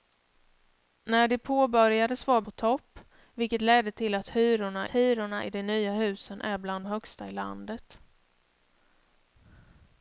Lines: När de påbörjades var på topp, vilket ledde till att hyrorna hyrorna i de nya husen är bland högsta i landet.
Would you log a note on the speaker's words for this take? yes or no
no